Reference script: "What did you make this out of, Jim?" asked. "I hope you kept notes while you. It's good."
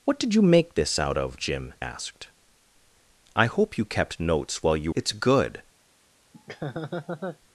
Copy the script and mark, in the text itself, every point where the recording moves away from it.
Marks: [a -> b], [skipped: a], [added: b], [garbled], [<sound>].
"What did you make this out of, Jim?" asked. "I hope you kept notes while you. It's good." [laugh]